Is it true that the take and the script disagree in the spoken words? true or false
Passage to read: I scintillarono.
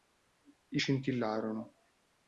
false